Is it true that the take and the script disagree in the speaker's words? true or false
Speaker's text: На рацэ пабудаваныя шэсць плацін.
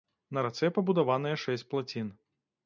false